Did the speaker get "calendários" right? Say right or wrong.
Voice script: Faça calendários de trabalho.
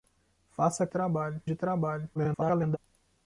wrong